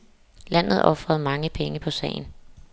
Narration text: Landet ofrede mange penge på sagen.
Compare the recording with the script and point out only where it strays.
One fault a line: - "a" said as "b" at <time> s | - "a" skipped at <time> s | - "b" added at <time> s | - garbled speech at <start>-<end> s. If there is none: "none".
none